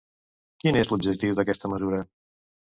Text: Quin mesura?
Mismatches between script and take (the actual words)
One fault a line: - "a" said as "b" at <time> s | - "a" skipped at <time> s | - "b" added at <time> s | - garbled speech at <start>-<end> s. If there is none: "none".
- "és l'objectiu d'aquesta" added at 0.8 s